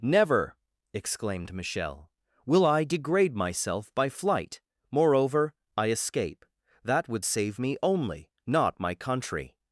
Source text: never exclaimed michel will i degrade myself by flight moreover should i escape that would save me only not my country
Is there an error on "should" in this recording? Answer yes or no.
yes